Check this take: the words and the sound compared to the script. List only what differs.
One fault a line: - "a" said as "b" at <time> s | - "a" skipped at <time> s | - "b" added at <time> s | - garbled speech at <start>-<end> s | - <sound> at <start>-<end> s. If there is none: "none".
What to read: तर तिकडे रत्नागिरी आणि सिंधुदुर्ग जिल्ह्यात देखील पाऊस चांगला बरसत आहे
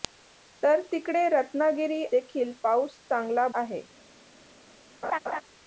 - "आणि सिंधुदुर्ग जिल्ह्यात" skipped at 2.0 s
- "बरसत" skipped at 3.5 s
- laugh at 5.0-5.4 s